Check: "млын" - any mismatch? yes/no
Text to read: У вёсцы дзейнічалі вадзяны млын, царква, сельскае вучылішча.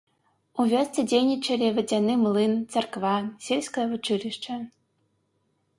no